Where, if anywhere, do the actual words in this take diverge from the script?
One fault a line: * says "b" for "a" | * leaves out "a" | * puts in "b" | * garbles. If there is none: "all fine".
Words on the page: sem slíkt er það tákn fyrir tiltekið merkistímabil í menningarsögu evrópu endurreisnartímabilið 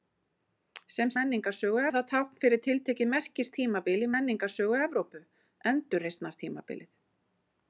* says "menningarsögu" for "slíkt"